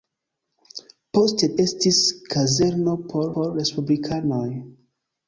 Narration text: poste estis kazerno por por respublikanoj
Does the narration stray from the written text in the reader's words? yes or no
no